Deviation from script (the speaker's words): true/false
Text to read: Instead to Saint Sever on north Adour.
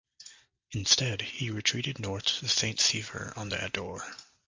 true